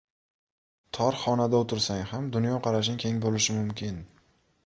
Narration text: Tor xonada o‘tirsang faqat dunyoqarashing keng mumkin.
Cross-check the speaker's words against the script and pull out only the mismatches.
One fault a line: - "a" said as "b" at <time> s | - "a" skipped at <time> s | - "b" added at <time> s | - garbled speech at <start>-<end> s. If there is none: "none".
- "faqat" said as "ham" at 2.1 s
- "bo‘lishi" added at 3.3 s